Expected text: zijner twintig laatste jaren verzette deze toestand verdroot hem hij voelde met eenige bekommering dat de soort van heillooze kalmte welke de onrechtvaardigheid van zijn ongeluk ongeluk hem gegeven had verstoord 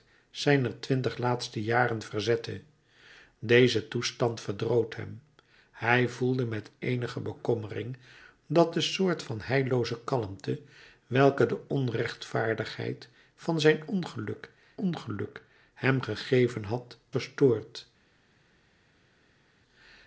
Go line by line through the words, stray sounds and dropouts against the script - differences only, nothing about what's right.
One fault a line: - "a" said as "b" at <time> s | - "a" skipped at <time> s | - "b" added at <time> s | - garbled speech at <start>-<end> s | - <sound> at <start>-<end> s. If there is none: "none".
none